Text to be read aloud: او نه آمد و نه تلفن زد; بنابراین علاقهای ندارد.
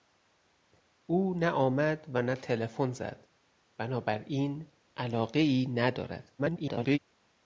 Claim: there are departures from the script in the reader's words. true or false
true